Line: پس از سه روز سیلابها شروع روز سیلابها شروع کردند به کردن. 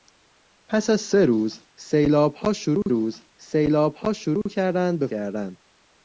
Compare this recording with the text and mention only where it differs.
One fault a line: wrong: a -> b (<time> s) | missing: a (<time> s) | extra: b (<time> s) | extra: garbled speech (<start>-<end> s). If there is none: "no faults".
no faults